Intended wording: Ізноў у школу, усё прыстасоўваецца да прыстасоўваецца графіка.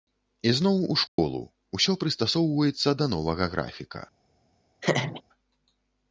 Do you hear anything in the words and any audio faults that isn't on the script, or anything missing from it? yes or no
yes